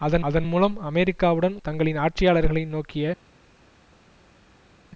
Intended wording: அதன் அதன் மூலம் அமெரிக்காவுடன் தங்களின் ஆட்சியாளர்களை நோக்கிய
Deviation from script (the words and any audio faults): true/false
false